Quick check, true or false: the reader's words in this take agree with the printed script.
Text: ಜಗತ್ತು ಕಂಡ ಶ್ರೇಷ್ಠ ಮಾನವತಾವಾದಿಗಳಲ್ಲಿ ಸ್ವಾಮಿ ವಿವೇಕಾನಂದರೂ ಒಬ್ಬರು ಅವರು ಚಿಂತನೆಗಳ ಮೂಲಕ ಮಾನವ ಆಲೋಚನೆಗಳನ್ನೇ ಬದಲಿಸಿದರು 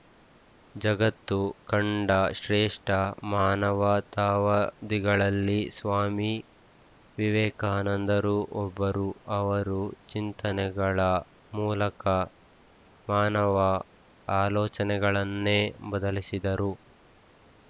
true